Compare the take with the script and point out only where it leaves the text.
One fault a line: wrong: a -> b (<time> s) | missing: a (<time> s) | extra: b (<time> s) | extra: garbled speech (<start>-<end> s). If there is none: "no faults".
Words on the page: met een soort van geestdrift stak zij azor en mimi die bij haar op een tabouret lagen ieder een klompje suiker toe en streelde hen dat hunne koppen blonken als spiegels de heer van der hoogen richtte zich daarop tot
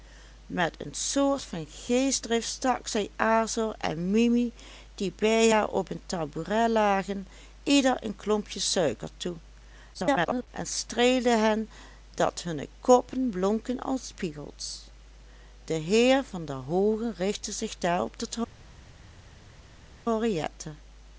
extra: garbled speech (9.9-10.5 s)